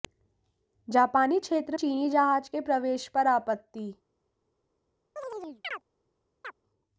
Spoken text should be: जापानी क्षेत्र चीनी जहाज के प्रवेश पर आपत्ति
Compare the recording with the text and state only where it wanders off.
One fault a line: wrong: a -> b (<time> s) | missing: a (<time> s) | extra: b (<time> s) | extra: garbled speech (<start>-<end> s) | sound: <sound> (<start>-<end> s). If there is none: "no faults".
sound: chirp (5.2-5.8 s)
sound: chirp (6.4-6.5 s)